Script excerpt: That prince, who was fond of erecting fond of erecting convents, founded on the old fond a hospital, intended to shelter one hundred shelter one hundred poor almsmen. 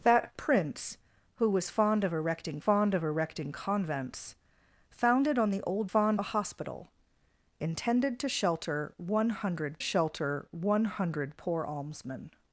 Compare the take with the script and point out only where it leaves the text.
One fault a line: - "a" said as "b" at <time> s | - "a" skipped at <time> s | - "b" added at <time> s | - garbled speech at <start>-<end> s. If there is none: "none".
none